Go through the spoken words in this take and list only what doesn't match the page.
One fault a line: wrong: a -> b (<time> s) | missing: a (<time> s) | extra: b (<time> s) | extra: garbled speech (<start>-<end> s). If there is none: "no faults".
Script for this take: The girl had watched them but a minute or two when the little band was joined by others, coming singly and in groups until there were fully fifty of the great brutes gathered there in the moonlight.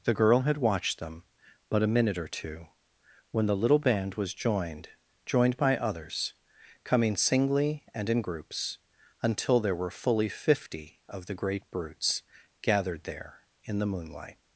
extra: joined (5.3 s)